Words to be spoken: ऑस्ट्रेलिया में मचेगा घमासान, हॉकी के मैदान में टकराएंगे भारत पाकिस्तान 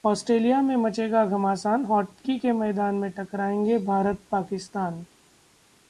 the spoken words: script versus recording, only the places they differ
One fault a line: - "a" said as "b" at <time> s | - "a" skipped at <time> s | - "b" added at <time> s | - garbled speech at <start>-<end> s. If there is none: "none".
none